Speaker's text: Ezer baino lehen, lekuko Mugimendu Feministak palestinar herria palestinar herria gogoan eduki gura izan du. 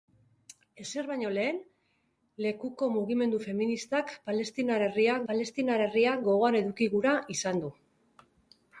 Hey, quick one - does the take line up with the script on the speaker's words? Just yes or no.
yes